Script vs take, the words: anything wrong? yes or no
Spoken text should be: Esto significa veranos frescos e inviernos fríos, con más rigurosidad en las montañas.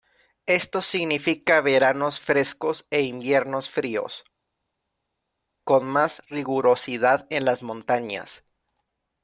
no